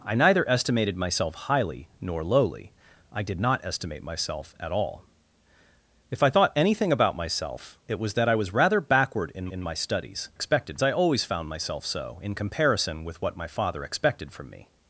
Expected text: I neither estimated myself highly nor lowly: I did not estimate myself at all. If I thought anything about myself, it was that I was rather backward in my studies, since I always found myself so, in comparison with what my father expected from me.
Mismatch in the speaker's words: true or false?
true